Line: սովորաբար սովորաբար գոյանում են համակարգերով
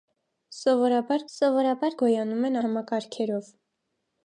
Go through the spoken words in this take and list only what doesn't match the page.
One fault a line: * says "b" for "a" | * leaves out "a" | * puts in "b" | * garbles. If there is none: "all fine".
all fine